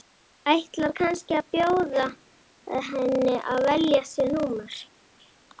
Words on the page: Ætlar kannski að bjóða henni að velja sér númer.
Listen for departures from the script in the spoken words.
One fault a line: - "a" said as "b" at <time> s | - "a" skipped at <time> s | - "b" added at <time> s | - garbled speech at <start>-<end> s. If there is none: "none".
none